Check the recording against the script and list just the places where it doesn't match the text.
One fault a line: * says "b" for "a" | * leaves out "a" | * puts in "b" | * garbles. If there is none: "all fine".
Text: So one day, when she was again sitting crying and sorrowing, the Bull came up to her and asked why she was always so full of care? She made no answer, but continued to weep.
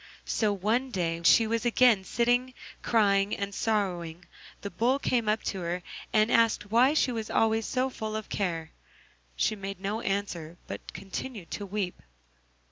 * leaves out "when"